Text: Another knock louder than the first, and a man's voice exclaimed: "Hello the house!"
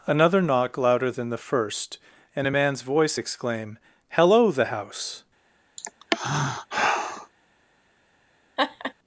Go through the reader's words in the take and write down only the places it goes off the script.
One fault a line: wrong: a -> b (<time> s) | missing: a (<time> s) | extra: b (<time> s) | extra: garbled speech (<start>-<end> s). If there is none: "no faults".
wrong: exclaimed -> exclaim (3.2 s)